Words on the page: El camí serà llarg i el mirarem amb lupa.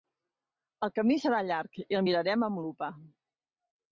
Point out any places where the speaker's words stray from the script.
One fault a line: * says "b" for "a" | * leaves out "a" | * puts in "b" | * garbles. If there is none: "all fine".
all fine